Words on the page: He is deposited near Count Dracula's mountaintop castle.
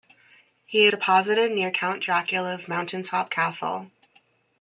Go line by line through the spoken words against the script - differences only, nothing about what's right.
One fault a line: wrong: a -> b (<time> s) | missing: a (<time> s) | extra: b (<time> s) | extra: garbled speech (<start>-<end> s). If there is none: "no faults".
missing: is (0.9 s)